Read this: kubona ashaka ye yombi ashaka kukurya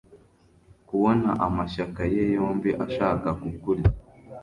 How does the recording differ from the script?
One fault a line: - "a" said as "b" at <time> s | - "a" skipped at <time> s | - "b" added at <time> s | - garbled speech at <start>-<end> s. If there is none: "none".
- "ashaka" said as "amashyaka" at 1.5 s